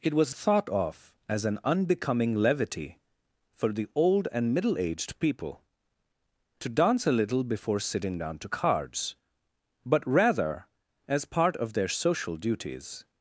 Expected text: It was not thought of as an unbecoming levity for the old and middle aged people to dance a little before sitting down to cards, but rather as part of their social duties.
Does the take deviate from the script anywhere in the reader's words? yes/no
yes